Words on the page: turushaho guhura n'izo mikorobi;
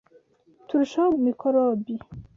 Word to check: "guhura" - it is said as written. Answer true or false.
false